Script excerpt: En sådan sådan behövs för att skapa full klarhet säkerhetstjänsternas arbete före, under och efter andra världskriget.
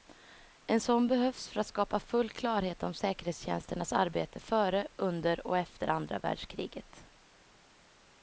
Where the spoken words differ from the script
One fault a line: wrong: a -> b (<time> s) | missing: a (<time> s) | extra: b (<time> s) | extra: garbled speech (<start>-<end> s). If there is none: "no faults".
missing: sådan (1.1 s)
extra: om (2.8 s)